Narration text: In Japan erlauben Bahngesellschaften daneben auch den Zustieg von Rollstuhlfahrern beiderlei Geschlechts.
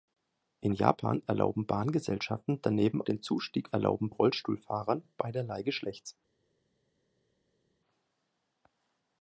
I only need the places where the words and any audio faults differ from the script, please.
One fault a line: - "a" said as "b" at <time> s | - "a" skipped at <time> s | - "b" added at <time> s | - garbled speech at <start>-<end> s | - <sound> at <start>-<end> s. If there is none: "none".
- "auch" skipped at 3.0 s
- "von" said as "erlauben" at 3.7 s